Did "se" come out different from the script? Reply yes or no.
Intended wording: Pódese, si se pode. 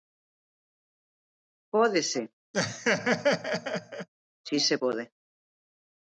no